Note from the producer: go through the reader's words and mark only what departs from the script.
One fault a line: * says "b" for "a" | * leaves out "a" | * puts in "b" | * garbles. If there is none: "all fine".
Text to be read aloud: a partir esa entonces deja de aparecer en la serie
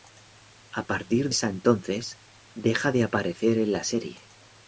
all fine